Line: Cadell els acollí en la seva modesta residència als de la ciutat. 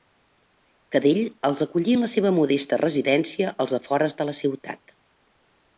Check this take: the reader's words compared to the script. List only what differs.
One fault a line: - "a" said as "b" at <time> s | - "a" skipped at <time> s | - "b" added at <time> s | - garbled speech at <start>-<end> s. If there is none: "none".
- "afores" added at 3.8 s